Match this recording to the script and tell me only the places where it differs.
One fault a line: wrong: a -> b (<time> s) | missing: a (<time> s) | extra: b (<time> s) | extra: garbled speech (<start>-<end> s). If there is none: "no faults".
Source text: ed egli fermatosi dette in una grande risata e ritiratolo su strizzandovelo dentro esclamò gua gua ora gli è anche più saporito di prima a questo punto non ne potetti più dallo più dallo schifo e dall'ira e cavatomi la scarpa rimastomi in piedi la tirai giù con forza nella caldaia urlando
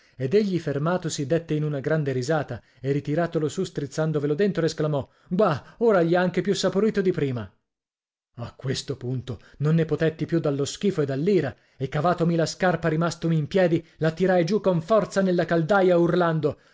missing: gua (5.8 s)
missing: più dallo (10.7 s)